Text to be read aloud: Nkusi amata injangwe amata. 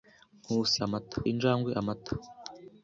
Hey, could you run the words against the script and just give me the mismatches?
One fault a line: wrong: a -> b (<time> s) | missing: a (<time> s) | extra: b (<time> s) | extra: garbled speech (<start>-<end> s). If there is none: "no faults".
no faults